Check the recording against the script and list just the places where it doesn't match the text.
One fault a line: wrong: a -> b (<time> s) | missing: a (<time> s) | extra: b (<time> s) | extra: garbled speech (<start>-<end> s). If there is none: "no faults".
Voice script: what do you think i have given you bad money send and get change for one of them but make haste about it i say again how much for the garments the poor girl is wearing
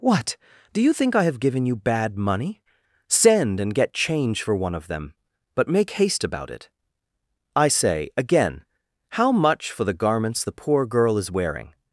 no faults